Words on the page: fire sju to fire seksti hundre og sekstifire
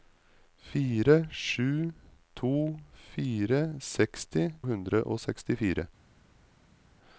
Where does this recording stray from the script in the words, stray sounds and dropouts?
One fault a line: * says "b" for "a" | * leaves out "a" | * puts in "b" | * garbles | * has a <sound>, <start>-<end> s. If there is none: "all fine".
all fine